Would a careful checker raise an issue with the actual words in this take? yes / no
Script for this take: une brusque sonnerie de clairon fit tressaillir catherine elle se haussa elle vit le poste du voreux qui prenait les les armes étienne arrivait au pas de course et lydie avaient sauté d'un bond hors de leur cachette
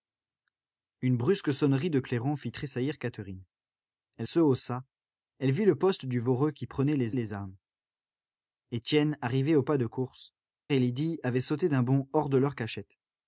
no